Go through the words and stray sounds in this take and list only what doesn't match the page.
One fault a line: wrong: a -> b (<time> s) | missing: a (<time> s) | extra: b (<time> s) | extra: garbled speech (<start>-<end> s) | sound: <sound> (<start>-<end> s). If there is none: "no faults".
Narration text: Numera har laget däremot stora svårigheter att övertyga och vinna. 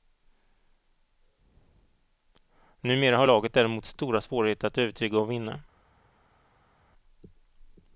no faults